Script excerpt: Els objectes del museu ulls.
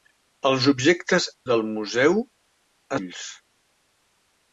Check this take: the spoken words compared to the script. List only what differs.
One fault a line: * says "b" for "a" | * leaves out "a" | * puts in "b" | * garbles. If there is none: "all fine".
all fine